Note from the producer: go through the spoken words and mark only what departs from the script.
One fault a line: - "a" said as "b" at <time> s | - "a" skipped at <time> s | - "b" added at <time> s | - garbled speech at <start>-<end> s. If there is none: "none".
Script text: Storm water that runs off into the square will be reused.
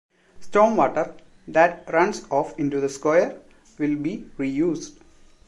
none